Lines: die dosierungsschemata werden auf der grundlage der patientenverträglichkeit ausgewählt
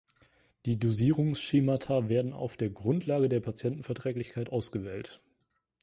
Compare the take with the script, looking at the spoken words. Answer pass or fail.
pass